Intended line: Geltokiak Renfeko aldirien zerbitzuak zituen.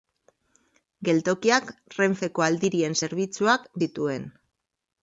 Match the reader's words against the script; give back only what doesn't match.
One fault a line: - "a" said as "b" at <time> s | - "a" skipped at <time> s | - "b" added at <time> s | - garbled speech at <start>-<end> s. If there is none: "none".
none